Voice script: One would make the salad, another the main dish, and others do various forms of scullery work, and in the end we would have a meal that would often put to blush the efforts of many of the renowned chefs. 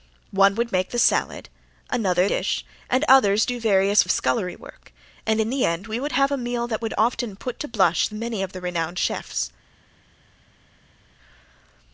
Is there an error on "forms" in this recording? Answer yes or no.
yes